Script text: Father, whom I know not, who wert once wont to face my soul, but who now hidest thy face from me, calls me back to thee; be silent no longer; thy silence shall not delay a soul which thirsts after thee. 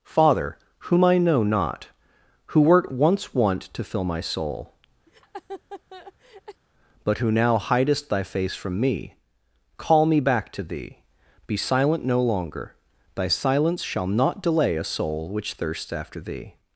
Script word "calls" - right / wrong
wrong